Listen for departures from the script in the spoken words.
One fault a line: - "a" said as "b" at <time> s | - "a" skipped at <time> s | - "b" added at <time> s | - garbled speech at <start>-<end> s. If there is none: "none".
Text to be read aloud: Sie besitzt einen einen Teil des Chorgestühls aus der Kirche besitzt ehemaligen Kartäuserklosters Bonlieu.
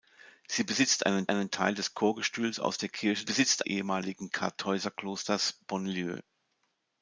none